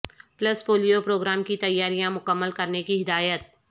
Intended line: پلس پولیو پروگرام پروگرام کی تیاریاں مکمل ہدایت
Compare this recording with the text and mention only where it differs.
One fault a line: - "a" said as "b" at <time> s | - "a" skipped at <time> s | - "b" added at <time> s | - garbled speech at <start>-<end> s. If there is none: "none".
- "پروگرام" skipped at 1.4 s
- "کرنے کی" added at 2.5 s